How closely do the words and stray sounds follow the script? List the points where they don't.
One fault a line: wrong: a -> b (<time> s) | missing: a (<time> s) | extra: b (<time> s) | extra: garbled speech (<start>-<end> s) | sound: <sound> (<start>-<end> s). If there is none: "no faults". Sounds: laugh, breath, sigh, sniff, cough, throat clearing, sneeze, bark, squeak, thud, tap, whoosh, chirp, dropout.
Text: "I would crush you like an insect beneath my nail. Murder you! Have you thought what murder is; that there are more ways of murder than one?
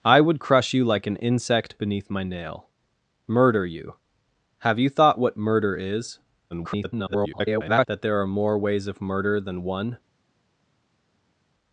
extra: garbled speech (6.5-7.9 s)